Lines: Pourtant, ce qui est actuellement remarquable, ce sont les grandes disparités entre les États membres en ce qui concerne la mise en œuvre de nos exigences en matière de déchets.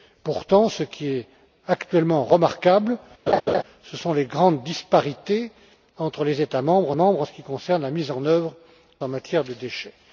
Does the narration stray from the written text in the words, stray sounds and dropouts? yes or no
yes